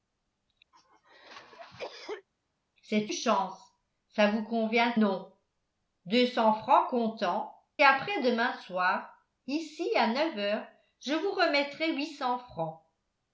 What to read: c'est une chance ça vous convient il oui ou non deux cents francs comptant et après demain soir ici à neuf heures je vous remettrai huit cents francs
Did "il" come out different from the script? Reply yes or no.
yes